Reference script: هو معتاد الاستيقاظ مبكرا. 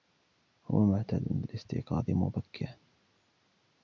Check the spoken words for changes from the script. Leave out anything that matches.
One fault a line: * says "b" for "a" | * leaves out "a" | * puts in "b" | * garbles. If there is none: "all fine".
all fine